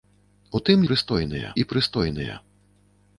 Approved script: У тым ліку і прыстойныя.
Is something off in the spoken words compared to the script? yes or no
yes